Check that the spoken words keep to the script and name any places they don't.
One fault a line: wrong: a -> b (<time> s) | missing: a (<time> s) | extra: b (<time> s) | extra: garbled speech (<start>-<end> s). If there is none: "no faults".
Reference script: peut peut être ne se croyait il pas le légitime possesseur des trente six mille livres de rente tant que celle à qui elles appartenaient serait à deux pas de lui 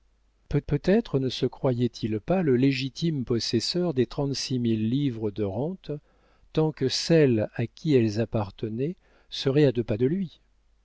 no faults